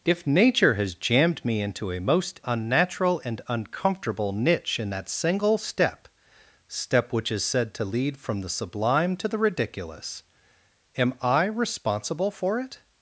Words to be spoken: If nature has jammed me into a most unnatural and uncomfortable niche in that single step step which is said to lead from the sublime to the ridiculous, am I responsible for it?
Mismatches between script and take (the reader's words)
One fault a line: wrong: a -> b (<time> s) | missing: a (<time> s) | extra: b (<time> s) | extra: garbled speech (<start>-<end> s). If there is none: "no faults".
no faults